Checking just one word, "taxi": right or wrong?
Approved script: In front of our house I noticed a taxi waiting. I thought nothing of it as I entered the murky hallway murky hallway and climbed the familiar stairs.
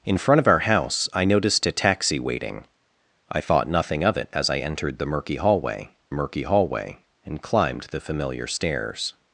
right